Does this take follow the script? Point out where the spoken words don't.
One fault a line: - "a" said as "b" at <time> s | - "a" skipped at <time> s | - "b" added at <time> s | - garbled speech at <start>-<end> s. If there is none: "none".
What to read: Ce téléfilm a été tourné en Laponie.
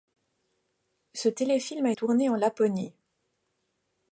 - "été" skipped at 1.9 s